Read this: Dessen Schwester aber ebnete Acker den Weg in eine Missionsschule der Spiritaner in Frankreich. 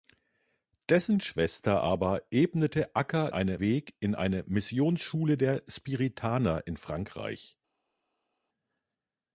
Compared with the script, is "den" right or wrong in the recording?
wrong